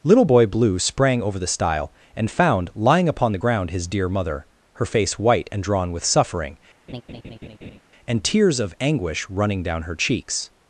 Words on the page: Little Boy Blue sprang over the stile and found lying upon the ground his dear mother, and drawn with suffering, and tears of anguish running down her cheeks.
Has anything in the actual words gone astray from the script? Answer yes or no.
yes